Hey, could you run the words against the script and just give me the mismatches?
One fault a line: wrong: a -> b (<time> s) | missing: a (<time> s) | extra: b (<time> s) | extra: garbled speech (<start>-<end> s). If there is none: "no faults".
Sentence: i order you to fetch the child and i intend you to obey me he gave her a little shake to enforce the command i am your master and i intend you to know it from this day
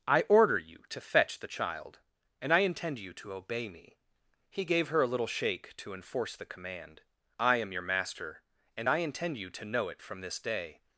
no faults